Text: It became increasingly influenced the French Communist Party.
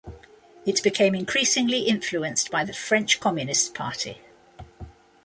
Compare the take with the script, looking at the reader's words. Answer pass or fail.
fail